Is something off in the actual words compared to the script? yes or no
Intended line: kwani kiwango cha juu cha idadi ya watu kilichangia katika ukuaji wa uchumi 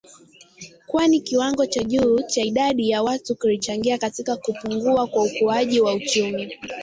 yes